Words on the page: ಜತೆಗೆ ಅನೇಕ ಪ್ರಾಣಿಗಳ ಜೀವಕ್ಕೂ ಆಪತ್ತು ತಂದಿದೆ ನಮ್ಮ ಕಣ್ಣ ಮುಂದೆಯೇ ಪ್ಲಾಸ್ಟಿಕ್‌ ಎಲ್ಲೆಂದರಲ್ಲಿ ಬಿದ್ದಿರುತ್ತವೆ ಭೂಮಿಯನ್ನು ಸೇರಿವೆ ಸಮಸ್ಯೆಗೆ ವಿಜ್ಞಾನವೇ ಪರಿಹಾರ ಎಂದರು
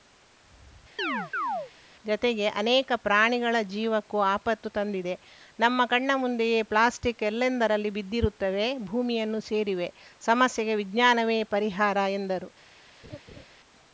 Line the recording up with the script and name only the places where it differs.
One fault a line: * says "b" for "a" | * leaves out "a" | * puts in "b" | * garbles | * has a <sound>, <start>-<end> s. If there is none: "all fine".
* has a chirp, 1.0-1.7 s
* has a laugh, 13.0-13.5 s